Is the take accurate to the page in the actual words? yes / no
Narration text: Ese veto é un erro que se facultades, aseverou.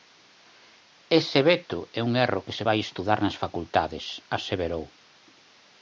no